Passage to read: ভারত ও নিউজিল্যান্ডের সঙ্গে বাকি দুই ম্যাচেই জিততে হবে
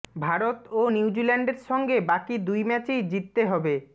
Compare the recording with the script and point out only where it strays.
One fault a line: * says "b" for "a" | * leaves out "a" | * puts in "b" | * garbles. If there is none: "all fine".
all fine